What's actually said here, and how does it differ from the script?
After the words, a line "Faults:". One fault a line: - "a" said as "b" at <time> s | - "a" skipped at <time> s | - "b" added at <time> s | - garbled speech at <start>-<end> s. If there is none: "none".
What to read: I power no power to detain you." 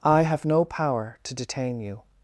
I have no power to detain you."
Faults:
- "power" said as "have" at 0.2 s